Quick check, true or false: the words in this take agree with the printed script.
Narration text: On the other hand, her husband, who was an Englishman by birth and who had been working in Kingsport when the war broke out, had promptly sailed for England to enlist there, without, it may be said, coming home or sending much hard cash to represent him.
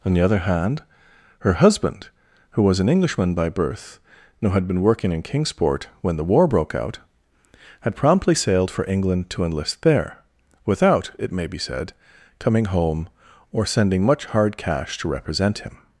true